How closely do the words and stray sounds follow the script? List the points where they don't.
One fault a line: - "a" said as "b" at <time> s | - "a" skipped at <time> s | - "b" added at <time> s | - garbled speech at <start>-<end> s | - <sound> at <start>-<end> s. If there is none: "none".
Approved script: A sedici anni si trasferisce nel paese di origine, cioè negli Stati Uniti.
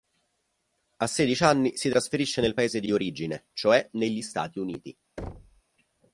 - "di" added at 2.8 s
- thud at 5.2-5.6 s